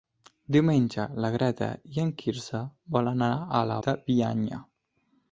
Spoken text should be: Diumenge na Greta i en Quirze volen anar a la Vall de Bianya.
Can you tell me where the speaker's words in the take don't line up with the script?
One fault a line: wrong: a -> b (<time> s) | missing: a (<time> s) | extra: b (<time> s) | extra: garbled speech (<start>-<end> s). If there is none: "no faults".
missing: Vall (3.8 s)